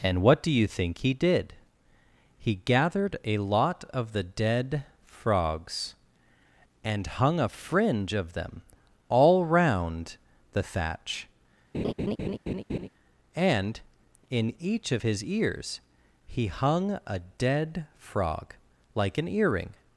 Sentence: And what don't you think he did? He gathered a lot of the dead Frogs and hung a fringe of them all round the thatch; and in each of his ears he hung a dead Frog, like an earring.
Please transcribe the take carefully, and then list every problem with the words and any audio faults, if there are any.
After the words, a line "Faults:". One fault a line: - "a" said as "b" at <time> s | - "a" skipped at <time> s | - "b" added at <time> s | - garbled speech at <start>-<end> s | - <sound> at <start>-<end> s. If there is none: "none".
And what do you think he did? He gathered a lot of the dead Frogs and hung a fringe of them all round the thatch; and in each of his ears he hung a dead Frog, like an earring.
Faults:
- "don't" said as "do" at 0.4 s
- laugh at 11.7-12.9 s